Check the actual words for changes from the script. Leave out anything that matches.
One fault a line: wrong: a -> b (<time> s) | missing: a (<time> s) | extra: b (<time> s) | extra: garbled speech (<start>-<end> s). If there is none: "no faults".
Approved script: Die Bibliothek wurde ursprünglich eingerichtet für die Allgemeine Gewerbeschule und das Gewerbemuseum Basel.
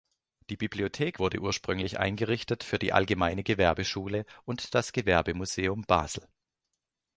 no faults